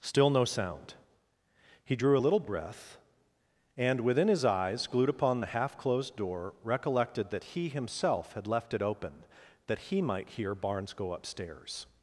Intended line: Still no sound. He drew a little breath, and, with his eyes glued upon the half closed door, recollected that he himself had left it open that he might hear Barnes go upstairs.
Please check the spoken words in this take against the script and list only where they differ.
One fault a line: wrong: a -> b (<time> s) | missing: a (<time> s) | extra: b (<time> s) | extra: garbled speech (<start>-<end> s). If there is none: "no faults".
wrong: with -> within (4.0 s)